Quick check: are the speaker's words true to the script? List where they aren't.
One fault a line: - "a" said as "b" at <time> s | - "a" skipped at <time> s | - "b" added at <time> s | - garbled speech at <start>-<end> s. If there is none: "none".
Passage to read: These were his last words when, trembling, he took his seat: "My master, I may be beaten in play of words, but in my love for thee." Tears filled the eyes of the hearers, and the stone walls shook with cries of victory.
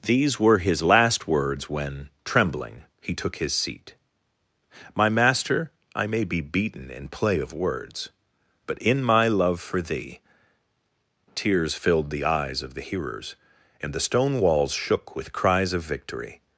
none